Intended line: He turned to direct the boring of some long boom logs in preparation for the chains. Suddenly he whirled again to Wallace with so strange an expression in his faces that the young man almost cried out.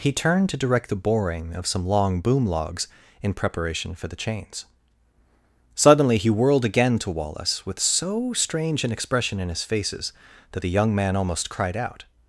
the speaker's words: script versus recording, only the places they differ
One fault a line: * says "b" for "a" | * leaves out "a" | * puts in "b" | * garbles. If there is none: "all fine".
all fine